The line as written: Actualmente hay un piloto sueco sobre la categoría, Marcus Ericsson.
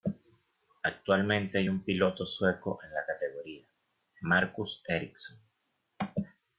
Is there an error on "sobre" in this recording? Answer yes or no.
yes